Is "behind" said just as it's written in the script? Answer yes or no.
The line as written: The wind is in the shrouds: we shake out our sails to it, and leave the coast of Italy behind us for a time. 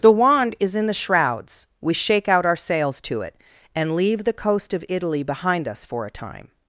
yes